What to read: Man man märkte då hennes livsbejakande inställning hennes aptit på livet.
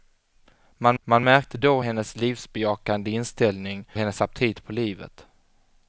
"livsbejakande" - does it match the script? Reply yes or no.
yes